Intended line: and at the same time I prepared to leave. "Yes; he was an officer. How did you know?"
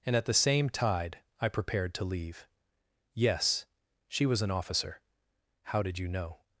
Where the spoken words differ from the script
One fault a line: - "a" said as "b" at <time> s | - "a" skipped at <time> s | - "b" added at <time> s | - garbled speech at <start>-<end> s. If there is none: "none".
- "time" said as "tide" at 0.7 s
- "he" said as "she" at 4.1 s